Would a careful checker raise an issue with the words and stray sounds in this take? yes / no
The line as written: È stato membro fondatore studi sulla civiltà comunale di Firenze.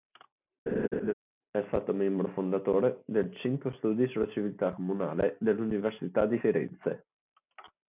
yes